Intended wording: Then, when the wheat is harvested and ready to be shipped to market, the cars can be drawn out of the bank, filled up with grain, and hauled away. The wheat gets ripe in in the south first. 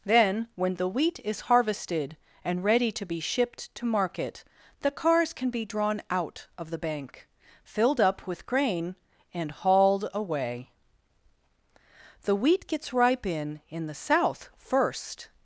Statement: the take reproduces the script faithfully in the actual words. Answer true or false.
true